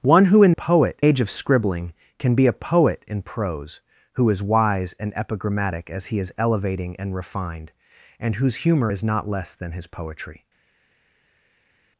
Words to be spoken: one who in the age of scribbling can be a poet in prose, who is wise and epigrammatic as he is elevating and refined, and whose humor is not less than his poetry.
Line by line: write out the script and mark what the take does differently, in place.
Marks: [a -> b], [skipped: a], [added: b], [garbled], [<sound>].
one who in [the -> poet] age of scribbling can be a poet in prose, who is wise and epigrammatic as he is elevating and refined, and whose humor is not less than his poetry.